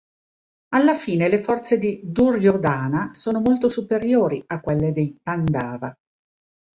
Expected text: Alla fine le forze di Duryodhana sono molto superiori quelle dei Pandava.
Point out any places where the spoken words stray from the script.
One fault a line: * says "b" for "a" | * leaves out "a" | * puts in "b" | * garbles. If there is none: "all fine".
* puts in "a"